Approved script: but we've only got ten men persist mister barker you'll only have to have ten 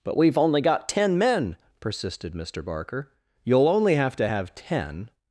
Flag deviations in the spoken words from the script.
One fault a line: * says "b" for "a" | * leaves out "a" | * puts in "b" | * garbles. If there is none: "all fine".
* says "persisted" for "persist"